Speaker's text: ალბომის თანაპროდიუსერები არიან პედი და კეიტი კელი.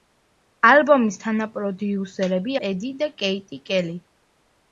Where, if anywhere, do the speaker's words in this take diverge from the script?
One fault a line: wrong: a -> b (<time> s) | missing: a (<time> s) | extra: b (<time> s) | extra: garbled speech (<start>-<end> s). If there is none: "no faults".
missing: არიან (2.5 s)